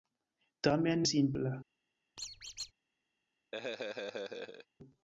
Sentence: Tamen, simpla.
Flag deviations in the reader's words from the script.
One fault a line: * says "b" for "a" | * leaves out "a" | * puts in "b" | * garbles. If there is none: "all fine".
all fine